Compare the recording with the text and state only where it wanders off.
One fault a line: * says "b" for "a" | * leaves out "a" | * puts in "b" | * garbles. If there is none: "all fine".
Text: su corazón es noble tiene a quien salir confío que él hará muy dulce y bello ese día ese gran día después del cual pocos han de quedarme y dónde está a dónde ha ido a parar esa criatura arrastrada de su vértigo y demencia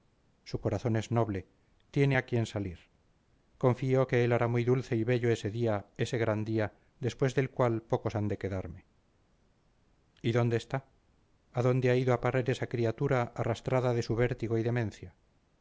all fine